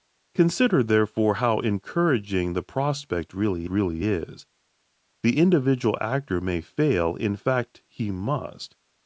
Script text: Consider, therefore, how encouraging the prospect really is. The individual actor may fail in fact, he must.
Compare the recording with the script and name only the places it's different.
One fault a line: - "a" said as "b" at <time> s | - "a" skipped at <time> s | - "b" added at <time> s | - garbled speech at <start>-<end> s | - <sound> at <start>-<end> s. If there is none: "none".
- "really" added at 3.7 s